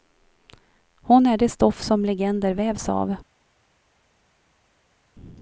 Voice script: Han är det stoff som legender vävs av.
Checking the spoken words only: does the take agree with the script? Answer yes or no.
no